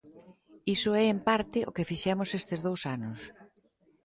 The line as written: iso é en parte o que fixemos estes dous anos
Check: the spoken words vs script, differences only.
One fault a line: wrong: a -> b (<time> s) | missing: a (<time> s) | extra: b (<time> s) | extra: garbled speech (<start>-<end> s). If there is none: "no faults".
no faults